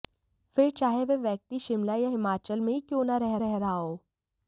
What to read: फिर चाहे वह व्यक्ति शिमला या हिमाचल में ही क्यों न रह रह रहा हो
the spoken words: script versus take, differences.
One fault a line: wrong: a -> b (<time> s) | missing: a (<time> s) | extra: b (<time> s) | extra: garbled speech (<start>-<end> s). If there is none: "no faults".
no faults